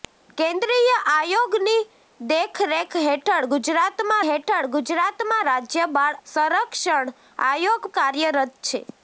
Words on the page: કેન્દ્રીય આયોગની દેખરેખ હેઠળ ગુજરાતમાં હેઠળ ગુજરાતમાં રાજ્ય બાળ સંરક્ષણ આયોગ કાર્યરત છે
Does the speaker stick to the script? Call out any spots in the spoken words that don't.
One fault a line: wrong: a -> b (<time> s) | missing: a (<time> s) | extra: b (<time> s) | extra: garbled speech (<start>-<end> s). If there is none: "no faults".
no faults